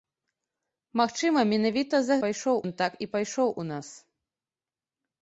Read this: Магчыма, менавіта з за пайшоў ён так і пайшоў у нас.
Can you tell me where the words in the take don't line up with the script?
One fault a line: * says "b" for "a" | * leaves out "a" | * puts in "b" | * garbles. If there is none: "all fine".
all fine